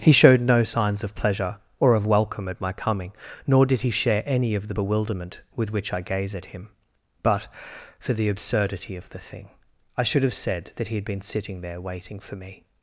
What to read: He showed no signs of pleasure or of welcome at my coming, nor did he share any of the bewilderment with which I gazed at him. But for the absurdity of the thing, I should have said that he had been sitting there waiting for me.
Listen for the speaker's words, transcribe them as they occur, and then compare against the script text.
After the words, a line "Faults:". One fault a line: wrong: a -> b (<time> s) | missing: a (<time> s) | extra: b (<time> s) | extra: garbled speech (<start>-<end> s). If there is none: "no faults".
He showed no signs of pleasure or of welcome at my coming, nor did he share any of the bewilderment with which I gaze at him. But for the absurdity of the thing, I should have said that he had been sitting there waiting for me.
Faults:
wrong: gazed -> gaze (6.0 s)